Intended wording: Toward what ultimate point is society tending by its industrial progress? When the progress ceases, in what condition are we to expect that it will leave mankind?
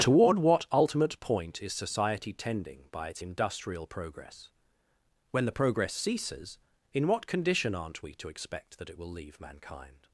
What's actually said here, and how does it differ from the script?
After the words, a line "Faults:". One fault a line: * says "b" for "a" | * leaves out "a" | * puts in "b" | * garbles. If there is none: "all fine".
Toward what ultimate point is society tending by its industrial progress? When the progress ceases, in what condition aren't we to expect that it will leave mankind?
Faults:
* says "aren't" for "are"